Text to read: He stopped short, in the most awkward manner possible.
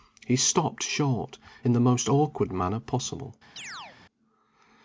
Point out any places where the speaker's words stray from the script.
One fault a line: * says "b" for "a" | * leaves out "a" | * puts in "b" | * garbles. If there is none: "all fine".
all fine